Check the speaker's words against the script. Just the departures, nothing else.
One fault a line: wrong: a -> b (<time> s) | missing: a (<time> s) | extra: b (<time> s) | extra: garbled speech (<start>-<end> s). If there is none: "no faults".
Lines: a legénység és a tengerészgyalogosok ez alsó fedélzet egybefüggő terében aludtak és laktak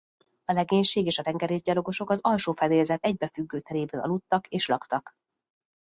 wrong: ez -> az (2.1 s)